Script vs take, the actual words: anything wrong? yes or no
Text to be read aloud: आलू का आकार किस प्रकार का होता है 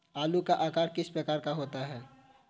no